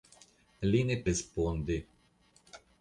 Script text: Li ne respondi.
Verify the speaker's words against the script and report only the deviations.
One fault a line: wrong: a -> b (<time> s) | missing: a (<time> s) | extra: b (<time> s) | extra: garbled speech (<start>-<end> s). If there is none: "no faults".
no faults